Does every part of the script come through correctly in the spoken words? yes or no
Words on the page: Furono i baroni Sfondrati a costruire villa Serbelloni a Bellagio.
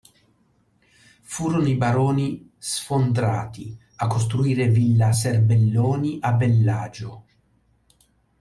yes